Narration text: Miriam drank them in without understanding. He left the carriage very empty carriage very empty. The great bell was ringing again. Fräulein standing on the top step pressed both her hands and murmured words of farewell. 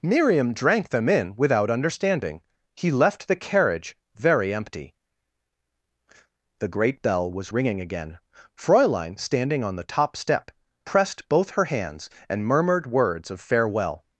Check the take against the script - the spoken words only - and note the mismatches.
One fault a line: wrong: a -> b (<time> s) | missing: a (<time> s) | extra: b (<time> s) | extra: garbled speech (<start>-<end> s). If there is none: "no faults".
missing: carriage very empty (5.0 s)